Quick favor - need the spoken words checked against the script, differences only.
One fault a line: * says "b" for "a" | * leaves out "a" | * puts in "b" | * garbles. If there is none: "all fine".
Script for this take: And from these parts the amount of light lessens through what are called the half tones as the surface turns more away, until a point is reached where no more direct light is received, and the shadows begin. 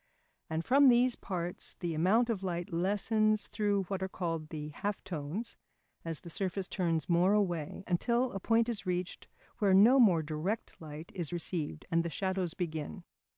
all fine